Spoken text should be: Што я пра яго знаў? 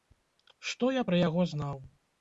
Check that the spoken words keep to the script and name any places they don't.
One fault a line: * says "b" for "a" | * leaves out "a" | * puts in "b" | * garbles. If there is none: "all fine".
all fine